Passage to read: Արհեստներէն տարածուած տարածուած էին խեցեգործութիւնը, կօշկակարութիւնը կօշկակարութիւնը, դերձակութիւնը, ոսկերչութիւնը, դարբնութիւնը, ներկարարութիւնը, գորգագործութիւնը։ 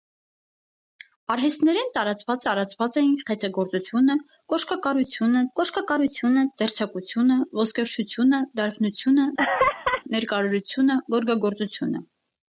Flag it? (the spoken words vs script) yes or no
no